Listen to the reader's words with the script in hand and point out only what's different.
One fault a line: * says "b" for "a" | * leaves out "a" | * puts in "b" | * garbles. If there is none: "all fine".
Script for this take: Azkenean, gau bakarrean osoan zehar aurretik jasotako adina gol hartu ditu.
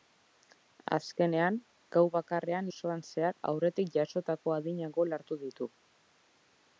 all fine